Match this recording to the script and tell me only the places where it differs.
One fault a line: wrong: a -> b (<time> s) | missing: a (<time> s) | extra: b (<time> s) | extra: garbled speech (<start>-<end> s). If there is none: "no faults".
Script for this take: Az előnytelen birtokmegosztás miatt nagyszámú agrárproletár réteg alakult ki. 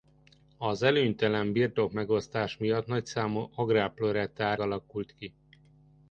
missing: réteg (4.6 s)